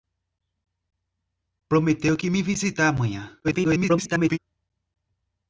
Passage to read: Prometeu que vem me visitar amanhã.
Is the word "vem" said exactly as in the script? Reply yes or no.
no